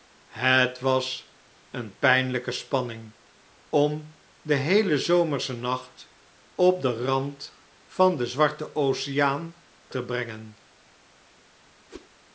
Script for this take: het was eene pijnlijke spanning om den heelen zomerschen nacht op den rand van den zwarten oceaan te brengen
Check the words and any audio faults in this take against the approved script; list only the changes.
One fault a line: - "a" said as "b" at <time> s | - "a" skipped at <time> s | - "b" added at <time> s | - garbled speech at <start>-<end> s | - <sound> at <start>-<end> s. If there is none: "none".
- whoosh at 11.9-12.1 s